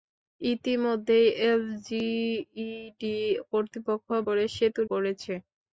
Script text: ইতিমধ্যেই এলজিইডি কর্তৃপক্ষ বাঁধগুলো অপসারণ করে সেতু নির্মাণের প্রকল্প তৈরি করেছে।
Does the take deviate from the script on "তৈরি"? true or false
true